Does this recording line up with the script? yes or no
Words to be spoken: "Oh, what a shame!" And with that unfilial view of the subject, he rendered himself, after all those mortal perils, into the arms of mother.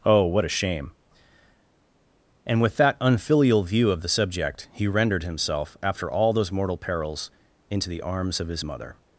no